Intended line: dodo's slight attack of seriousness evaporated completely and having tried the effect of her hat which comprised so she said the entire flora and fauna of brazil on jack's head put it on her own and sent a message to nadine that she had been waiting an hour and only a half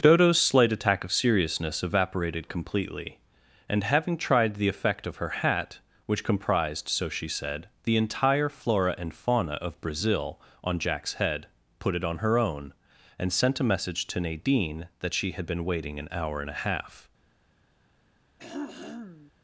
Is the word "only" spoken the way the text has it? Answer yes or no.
no